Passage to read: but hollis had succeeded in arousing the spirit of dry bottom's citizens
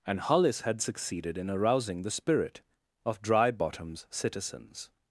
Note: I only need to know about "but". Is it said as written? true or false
false